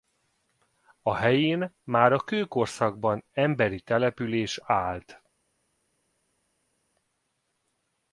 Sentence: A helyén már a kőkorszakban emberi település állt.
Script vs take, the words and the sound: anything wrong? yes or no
no